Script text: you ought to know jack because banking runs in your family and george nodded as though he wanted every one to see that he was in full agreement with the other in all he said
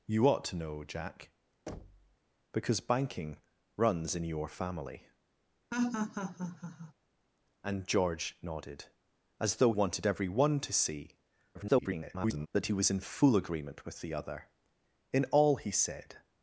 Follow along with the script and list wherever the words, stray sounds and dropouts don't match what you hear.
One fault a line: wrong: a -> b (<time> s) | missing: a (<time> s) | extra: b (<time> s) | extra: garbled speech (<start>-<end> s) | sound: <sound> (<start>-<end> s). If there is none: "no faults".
sound: thud (1.7-2.2 s)
sound: laugh (5.7-6.9 s)
missing: he (9.7 s)
extra: garbled speech (11.5-12.5 s)